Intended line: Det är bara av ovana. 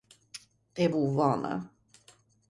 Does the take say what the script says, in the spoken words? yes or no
no